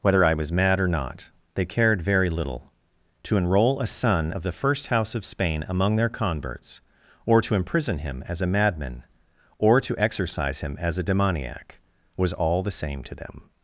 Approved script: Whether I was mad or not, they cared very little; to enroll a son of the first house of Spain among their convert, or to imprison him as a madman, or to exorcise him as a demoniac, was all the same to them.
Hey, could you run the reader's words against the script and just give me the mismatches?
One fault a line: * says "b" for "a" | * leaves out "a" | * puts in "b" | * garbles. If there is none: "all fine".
* says "converts" for "convert"